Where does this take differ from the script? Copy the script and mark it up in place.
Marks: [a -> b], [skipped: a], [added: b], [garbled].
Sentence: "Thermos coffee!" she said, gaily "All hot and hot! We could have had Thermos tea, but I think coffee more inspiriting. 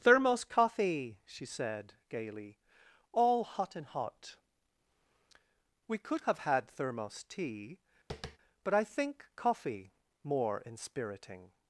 "Thermos coffee!" she said, gaily "All hot and hot! We could have had Thermos tea, but I think coffee more inspiriting.